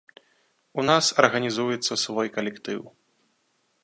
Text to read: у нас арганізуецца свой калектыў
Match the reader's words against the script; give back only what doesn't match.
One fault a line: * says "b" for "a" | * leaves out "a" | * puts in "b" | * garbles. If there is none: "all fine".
all fine